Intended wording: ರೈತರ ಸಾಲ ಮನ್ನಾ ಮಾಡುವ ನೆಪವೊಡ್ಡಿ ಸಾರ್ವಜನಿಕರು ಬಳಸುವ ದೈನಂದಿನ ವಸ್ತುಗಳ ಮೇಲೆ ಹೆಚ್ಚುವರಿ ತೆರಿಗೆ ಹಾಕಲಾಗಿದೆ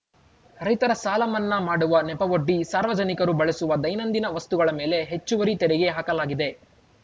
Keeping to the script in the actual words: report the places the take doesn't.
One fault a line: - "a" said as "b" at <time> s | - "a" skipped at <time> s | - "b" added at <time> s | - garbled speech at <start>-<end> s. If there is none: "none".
none